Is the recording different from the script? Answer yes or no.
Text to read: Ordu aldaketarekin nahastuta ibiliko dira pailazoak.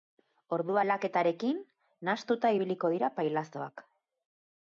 no